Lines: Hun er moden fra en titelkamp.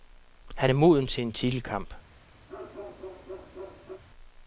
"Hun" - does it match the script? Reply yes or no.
no